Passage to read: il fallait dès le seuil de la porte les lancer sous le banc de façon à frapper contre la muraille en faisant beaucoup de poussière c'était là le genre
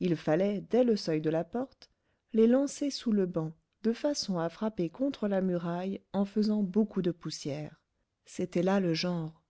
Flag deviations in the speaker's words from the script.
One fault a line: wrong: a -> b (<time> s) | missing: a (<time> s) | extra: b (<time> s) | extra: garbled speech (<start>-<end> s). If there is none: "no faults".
no faults